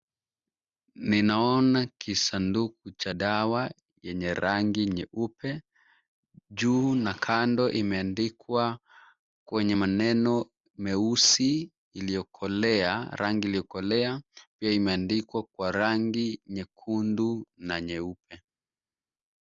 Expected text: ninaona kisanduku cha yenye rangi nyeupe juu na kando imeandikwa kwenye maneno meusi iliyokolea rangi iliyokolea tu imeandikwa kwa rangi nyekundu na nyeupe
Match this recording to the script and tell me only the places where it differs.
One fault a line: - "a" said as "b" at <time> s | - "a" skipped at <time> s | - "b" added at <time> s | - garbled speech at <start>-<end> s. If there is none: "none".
- "dawa" added at 3.1 s
- "tu" said as "pia" at 14.6 s